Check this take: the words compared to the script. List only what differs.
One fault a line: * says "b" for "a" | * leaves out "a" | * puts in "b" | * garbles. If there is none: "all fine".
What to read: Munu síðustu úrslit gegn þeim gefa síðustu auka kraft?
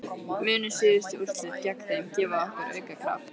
* says "okkur" for "síðustu"